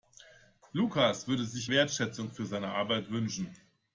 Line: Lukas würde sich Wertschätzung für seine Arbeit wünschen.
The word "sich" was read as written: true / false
true